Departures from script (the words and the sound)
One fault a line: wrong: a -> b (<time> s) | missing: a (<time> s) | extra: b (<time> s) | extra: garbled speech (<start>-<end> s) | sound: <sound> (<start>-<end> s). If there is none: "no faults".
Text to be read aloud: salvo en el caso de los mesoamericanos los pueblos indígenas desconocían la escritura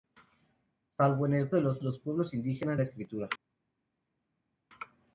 missing: caso (1.5 s)
missing: mesoamericanos (1.8 s)
missing: desconocían (2.8 s)